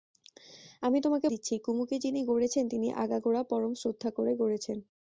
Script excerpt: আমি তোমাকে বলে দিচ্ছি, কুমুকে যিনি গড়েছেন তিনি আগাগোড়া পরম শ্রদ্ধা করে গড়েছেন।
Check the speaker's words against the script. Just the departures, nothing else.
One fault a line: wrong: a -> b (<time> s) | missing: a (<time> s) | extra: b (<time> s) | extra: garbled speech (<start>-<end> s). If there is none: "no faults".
missing: বলে (1.3 s)